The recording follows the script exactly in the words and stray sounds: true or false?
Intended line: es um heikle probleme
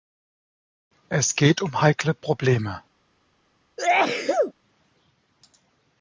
false